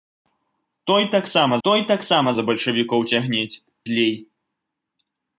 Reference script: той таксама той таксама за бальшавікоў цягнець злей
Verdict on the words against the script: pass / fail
pass